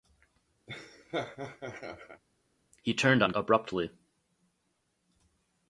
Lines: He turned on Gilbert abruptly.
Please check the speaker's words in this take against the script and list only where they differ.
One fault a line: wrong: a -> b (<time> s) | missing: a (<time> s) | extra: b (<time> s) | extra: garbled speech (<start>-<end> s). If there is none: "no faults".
missing: Gilbert (3.3 s)